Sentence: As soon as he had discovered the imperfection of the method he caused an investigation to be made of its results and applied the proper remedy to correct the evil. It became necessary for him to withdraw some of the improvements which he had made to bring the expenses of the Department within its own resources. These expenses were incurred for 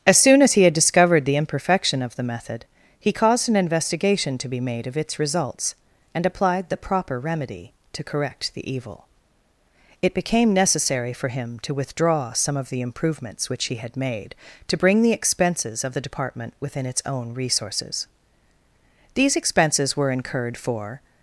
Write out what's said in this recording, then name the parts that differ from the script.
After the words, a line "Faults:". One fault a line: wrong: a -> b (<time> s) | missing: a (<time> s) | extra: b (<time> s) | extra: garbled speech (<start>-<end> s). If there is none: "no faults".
As soon as he had discovered the imperfection of the method he caused an investigation to be made of its results and applied the proper remedy to correct the evil. It became necessary for him to withdraw some of the improvements which he had made to bring the expenses of the Department within its own resources. These expenses were incurred for
Faults:
no faults